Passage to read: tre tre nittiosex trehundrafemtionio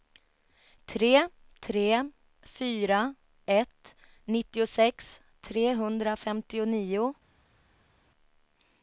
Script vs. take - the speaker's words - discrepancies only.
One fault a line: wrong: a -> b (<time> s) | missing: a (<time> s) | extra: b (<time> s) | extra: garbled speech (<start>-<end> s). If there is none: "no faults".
extra: fyra ett (2.4 s)